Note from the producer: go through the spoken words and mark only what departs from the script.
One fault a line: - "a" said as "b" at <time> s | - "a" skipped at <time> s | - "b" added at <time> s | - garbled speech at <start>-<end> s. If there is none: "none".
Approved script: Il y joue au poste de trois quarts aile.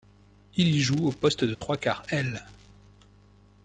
none